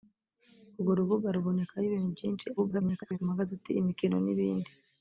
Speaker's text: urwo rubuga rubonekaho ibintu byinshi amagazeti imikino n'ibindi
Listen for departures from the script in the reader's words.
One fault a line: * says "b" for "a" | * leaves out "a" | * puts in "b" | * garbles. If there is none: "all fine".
* garbles